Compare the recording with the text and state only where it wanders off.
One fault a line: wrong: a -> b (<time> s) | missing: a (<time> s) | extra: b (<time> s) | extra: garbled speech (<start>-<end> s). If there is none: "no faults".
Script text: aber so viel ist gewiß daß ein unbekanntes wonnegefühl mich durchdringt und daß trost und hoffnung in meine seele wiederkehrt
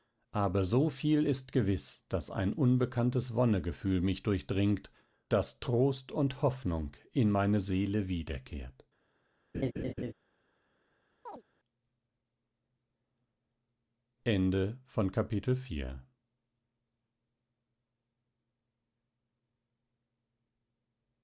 missing: und (4.9 s)